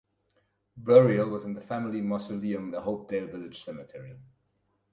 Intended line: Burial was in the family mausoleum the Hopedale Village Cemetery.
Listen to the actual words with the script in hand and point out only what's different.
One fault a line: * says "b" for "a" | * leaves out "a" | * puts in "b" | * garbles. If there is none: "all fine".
all fine